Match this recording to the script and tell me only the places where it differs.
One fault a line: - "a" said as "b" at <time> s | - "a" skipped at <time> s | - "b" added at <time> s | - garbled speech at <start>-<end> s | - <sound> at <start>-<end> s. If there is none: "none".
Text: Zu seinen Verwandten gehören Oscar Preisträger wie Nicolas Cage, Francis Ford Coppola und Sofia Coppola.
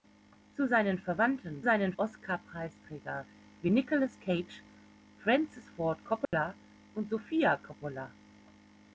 - "gehören" said as "seinen" at 1.6 s
- dropout at 6.2-6.3 s